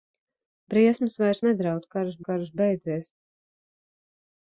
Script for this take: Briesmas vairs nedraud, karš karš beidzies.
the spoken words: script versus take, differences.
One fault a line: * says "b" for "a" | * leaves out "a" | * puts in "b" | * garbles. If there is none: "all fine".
all fine